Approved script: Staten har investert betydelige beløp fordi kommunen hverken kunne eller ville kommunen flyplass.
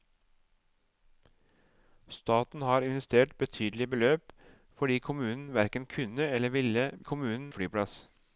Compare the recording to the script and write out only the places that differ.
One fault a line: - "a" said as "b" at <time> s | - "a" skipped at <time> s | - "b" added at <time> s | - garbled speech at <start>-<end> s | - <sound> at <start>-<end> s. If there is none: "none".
none